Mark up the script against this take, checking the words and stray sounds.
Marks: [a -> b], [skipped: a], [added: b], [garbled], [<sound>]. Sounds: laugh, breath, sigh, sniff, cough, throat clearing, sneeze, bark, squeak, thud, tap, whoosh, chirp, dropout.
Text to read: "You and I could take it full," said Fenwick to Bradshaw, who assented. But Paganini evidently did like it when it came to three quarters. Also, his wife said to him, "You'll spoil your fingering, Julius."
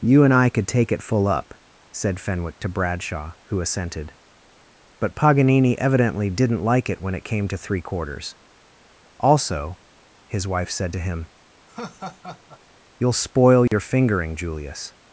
"You and I could take it full," [added: up] said Fenwick to Bradshaw, who assented. But Paganini evidently [did -> didn't] like it when it came to three quarters. Also, his wife said to him, [laugh] "You'll spoil your [dropout] fingering, Julius."